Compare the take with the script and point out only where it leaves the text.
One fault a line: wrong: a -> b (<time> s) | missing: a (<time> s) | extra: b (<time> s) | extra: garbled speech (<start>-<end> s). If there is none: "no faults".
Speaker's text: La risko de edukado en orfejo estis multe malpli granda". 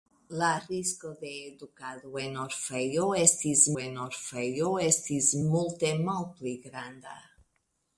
extra: en orfejo estis (3.8 s)